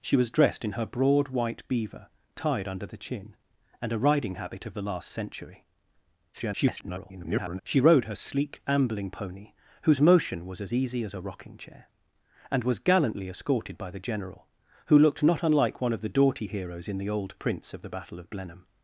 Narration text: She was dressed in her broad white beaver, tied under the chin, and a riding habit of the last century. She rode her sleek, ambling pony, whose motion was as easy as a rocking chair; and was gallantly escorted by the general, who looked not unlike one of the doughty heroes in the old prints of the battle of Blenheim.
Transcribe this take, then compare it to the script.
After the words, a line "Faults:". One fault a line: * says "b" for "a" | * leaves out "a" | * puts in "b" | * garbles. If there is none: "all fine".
She was dressed in her broad white beaver, tied under the chin, and a riding habit of the last century. [garbled] She rode her sleek, ambling pony, whose motion was as easy as a rocking chair; and was gallantly escorted by the general, who looked not unlike one of the doughty heroes in the old prints of the battle of Blenheim.
Faults:
* garbles